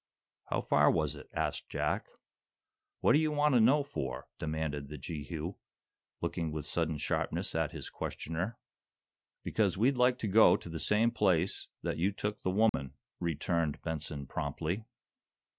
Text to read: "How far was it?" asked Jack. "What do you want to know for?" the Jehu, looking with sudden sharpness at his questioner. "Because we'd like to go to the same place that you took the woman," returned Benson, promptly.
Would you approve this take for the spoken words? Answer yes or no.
no